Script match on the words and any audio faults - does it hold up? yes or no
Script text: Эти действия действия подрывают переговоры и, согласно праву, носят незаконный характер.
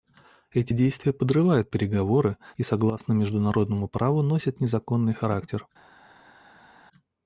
no